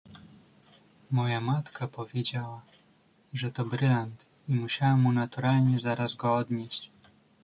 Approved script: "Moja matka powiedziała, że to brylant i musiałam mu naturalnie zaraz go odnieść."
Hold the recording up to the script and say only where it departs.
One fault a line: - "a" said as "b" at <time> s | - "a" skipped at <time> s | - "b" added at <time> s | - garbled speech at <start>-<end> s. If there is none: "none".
none